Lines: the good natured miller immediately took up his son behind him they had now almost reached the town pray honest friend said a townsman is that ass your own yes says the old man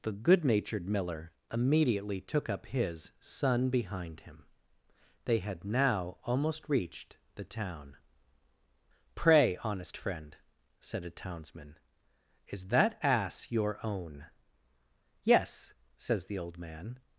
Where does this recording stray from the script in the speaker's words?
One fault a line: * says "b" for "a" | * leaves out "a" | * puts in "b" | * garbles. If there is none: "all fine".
all fine